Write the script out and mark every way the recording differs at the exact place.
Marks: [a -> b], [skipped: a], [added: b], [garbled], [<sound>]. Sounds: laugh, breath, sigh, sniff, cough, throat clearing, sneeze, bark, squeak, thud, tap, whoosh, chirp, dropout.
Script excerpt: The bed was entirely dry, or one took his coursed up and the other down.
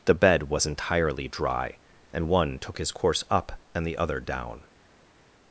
The bed was entirely dry, [or -> and] one took his [coursed -> course] up and the other down.